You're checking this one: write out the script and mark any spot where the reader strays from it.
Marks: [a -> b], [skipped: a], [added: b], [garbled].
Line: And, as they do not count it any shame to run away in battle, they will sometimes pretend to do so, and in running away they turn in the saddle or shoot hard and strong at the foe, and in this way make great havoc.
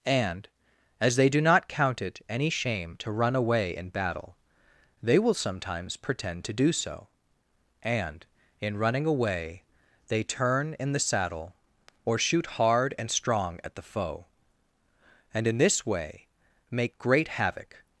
And, as they do not count it any shame to run away in battle, they will sometimes pretend to do so, and in running away they turn in the saddle or shoot hard and strong at the foe, and in this way make great havoc.